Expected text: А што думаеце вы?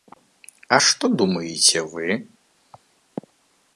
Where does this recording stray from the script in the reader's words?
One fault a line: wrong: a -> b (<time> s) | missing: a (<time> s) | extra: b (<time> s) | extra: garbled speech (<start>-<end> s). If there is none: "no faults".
no faults